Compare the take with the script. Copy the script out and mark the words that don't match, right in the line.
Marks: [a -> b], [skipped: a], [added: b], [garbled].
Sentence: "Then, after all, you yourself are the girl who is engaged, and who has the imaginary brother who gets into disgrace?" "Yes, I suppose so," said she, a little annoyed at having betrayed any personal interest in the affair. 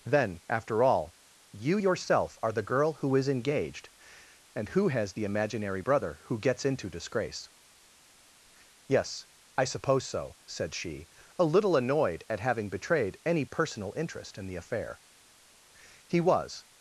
"Then, after all, you yourself are the girl who is engaged, and who has the imaginary brother who gets into disgrace?" "Yes, I suppose so," said she, a little annoyed at having betrayed any personal interest in the affair. [added: He was]